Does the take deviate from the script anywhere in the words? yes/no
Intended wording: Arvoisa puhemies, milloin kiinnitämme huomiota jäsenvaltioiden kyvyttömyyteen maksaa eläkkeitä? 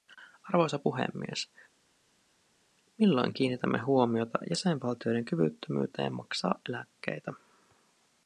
no